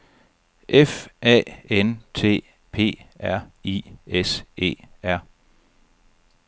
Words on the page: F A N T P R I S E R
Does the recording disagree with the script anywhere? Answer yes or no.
no